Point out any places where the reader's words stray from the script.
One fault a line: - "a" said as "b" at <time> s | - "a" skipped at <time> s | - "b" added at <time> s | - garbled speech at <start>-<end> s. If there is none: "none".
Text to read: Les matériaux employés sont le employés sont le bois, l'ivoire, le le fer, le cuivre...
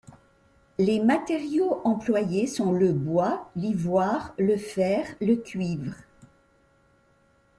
- "employés sont le" skipped at 2.9 s
- "le" skipped at 4.6 s